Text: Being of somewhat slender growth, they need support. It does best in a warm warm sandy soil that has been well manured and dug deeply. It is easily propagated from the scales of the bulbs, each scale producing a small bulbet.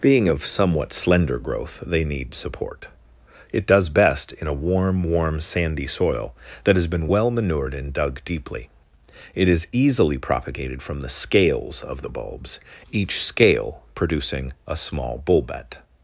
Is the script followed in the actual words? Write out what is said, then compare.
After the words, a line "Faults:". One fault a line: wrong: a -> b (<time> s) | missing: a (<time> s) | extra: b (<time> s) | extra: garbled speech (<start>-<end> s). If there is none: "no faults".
Being of somewhat slender growth, they need support. It does best in a warm warm sandy soil that has been well manured and dug deeply. It is easily propagated from the scales of the bulbs, each scale producing a small bulbet.
Faults:
no faults